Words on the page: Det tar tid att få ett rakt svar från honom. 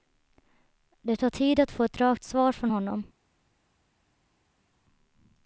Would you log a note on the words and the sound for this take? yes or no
no